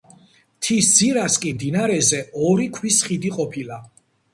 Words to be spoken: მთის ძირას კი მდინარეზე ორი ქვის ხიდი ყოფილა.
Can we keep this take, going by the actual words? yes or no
yes